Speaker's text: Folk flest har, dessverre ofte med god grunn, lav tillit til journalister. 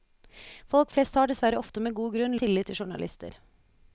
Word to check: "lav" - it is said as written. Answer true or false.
false